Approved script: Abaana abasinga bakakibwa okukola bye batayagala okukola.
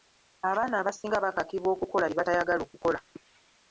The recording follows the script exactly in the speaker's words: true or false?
true